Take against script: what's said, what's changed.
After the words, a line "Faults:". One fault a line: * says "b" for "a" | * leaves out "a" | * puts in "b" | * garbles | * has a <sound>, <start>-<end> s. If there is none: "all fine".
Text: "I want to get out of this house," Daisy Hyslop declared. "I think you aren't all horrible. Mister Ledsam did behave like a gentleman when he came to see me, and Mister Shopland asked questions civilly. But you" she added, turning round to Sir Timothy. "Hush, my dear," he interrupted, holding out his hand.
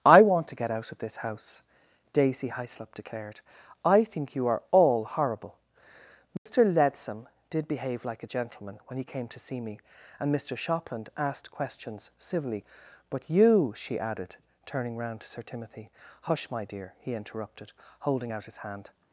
"I want to get out of this house," Daisy Hyslop declared. "I think you are all horrible. Mister Ledsam did behave like a gentleman when he came to see me, and Mister Shopland asked questions civilly. But you" she added, turning round to Sir Timothy. "Hush, my dear," he interrupted, holding out his hand.
Faults:
* says "are" for "aren't"
* has a dropout, 6.4-6.5 s